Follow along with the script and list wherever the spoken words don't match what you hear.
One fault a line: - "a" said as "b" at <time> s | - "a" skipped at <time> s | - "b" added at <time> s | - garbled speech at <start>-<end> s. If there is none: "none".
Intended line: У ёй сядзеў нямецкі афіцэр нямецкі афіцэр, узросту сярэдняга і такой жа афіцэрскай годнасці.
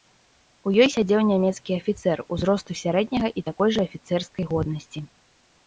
- "нямецкі афіцэр" skipped at 2.2 s